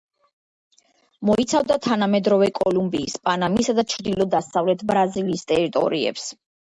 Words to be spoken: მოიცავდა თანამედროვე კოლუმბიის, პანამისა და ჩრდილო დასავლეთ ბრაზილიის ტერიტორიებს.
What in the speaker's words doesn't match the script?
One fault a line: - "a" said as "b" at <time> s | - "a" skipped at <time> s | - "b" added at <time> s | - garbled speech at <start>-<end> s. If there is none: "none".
none